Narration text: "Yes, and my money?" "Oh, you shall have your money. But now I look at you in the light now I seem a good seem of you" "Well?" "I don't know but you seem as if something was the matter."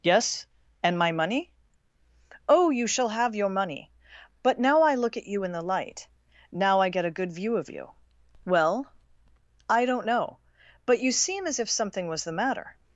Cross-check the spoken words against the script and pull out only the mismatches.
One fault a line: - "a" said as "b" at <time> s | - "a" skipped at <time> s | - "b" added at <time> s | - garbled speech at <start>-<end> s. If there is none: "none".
- "seem" said as "get" at 6.9 s
- "seem" said as "view" at 7.3 s